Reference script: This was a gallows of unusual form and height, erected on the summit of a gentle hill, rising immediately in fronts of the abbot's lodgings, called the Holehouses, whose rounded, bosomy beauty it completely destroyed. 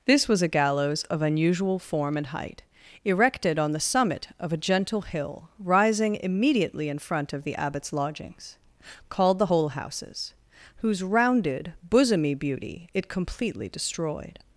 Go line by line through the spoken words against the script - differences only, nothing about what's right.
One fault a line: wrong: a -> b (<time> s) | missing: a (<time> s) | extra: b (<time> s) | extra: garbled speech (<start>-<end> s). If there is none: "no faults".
wrong: fronts -> front (7.0 s)